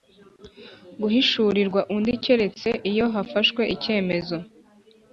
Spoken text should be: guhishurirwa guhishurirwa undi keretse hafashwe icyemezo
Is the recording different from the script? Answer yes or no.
yes